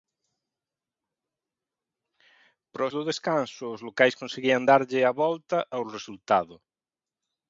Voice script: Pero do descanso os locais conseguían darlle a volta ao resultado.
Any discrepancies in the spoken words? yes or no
no